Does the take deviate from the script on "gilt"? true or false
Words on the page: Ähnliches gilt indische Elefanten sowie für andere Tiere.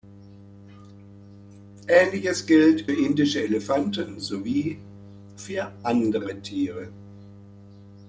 false